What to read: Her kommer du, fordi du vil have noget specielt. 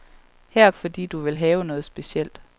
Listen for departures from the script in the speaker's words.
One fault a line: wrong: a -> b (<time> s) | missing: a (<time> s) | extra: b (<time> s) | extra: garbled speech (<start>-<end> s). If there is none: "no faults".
missing: kommer du (0.7 s)